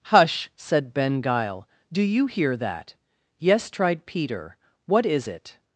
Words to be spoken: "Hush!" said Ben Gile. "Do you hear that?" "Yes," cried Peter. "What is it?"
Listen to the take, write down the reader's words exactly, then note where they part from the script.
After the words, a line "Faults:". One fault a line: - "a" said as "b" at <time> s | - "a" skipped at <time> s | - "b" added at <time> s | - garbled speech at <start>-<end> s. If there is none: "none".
"Hush!" said Ben Gile. "Do you hear that?" "Yes," tried Peter. "What is it?"
Faults:
- "cried" said as "tried" at 3.7 s